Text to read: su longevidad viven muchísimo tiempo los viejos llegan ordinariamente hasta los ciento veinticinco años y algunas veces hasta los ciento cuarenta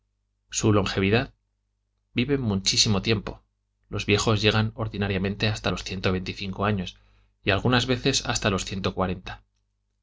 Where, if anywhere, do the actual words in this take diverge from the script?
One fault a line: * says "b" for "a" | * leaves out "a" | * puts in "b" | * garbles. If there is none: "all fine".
all fine